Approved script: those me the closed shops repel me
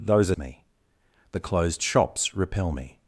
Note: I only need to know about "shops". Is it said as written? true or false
true